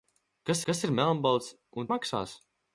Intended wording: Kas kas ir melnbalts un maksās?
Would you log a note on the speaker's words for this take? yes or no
no